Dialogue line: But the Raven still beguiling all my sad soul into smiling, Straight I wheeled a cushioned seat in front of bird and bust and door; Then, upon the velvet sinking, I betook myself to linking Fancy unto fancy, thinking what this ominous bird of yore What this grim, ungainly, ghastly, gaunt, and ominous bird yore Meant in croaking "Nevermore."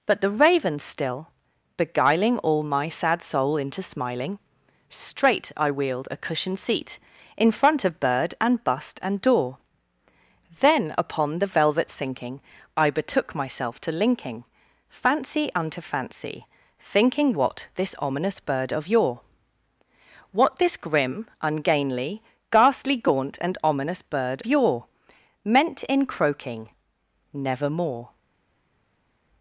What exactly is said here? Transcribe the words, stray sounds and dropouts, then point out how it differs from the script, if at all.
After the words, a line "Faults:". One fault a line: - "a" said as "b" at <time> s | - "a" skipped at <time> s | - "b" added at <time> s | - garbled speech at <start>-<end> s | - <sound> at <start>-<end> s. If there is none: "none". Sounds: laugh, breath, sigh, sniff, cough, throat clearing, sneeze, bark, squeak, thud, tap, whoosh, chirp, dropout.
But the Raven still beguiling all my sad soul into smiling, Straight I wheeled a cushioned seat in front of bird and bust and door; Then, upon the velvet sinking, I betook myself to linking Fancy unto fancy, thinking what this ominous bird of yore What this grim, ungainly, ghastly, gaunt, and ominous bird yore Meant in croaking "Nevermore."
Faults:
none